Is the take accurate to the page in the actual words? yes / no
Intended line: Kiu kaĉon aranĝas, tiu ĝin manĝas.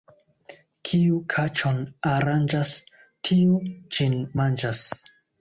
yes